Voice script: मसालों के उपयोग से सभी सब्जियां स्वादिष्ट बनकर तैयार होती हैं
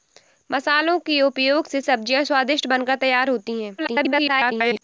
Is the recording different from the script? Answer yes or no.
yes